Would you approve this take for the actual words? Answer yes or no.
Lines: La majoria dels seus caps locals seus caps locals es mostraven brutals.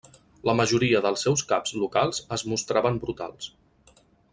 no